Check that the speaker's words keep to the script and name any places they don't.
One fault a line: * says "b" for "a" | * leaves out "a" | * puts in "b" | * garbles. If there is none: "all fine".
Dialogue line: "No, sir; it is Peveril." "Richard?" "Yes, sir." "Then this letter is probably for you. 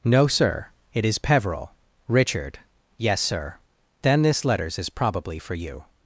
* says "letters" for "letter"